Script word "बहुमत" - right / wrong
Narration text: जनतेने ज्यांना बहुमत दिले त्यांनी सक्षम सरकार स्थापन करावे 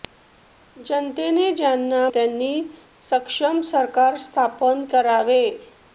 wrong